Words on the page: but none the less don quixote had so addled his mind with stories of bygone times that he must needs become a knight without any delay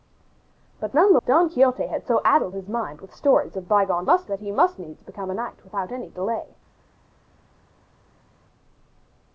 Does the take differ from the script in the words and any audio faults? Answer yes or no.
yes